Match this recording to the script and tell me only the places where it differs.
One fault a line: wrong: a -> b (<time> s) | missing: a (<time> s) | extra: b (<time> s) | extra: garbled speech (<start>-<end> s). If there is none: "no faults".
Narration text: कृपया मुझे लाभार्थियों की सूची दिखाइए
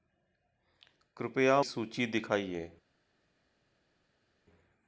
missing: मुझे लाभार्थियों की (1.6 s)